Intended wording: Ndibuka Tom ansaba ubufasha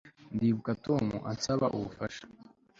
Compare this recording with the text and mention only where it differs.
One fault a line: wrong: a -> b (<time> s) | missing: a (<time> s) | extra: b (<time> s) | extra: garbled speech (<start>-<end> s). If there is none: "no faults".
no faults